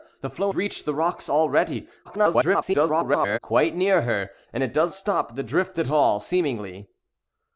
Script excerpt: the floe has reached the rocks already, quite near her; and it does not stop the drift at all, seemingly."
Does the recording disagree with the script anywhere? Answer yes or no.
yes